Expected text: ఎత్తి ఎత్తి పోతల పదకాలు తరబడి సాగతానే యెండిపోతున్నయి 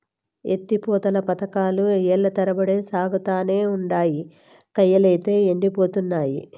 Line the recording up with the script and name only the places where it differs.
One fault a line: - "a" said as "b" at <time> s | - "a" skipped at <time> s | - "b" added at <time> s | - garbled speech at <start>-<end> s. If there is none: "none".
- "ఎత్తి" skipped at 0.8 s
- "ఏల్ల" added at 2.1 s
- "ఉండాయి కయ్యలైతే" added at 3.8 s